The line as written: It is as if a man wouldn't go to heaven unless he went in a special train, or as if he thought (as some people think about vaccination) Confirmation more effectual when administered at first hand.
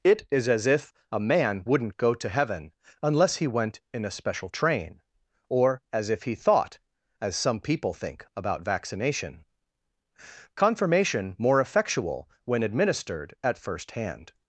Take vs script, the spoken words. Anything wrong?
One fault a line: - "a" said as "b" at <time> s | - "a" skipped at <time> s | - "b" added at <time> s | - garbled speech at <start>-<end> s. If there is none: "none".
none